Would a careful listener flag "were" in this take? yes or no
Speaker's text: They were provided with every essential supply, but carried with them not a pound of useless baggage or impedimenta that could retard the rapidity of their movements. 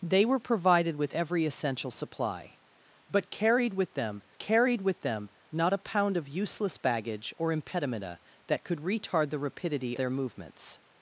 no